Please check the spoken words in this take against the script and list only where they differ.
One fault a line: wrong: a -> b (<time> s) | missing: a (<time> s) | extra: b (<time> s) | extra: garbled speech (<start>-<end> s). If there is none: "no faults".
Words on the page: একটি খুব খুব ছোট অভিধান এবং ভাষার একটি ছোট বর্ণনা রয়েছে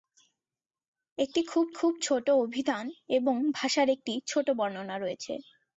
no faults